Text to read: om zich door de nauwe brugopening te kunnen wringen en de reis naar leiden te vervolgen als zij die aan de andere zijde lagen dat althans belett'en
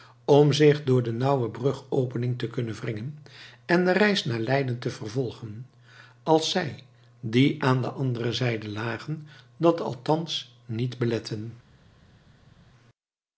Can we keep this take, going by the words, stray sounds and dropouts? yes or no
no